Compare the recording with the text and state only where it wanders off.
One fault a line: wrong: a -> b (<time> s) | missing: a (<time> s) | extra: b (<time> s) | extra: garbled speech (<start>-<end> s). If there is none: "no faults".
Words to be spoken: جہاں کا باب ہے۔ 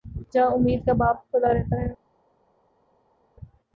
extra: امید (0.5 s)
extra: کھلا رہتا (1.3 s)